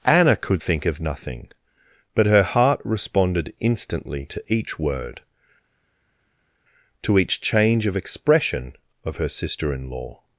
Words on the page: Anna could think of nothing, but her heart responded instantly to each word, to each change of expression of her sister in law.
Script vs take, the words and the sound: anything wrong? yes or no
no